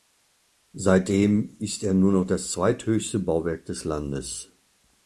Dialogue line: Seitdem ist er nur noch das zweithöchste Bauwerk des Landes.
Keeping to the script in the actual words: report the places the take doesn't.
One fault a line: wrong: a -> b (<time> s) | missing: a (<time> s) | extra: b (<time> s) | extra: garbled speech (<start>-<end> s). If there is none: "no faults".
no faults